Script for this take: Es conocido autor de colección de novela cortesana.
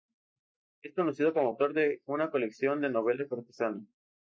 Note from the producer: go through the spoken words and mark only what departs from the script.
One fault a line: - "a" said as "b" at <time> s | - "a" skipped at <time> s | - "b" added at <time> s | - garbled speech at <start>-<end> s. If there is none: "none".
- "como" added at 1.3 s
- "una" added at 2.0 s